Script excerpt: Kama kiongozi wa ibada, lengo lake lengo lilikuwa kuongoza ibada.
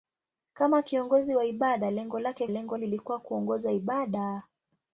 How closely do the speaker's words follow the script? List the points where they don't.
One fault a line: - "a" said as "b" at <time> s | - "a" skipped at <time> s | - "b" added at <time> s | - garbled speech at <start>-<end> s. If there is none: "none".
none